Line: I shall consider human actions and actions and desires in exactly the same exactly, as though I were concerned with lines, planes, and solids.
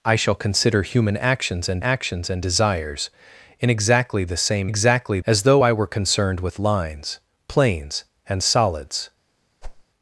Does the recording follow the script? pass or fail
pass